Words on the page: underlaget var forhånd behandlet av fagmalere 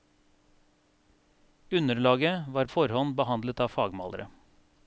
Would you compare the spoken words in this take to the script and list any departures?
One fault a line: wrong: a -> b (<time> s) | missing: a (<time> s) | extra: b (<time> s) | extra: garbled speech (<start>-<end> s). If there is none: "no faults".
no faults